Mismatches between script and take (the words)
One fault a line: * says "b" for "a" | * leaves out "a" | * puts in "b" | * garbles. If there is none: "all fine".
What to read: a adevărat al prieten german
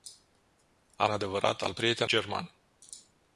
all fine